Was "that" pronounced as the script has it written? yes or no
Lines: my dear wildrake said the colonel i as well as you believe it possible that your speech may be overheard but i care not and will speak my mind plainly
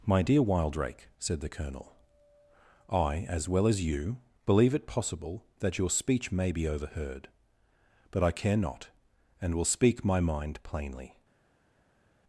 yes